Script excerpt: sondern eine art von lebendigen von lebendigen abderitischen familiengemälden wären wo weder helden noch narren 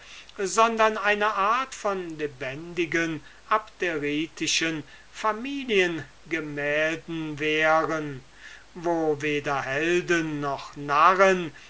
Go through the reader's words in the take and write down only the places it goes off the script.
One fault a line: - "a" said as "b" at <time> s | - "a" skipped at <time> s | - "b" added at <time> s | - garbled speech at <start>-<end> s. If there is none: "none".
- "von lebendigen" skipped at 3.2 s